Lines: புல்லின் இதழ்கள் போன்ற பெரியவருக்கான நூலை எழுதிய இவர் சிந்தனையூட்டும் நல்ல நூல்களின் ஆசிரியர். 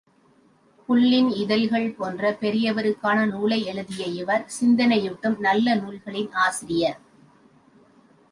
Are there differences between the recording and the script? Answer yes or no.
no